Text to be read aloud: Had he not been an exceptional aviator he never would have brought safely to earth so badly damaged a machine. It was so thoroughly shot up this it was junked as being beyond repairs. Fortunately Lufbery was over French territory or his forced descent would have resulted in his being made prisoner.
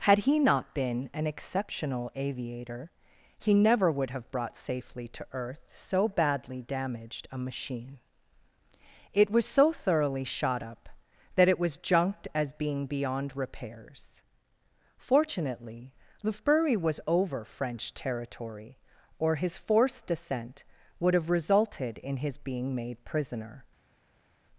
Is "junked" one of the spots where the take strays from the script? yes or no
no